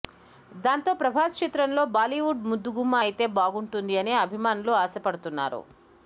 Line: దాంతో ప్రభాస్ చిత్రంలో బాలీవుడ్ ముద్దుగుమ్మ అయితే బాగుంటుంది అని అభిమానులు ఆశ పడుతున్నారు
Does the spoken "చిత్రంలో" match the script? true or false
true